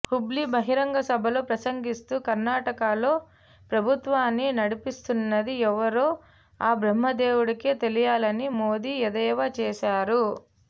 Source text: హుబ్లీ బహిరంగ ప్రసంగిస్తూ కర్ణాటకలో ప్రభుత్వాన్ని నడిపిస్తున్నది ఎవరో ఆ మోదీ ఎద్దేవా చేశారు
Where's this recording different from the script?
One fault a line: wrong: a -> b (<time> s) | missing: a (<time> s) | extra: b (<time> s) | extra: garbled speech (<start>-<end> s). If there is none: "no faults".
extra: సభలో (1.1 s)
extra: బ్రహ్మదేవుడికే తెలియాలని (6.8 s)